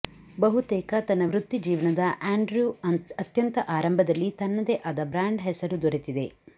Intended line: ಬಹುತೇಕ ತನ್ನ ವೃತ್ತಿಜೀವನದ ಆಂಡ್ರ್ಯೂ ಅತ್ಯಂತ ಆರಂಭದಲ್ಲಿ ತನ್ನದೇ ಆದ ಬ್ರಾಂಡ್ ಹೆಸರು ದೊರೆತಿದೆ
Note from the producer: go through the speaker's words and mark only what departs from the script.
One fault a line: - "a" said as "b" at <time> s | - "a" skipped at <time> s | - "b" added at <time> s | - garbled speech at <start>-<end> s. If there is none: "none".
none